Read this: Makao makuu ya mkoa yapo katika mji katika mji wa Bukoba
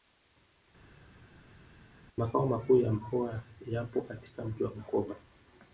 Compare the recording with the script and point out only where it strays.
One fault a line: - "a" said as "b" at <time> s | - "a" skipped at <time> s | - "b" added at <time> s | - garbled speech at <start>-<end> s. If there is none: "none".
- "katika mji" skipped at 4.6 s